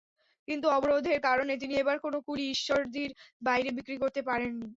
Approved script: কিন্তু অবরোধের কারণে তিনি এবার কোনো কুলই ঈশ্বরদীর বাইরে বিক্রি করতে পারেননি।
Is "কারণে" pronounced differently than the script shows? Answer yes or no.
no